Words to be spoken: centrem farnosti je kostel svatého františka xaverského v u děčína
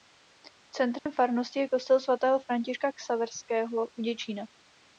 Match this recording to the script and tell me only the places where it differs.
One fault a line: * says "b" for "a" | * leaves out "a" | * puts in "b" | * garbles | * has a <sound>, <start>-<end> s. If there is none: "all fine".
* has a dropout, 1.0-1.1 s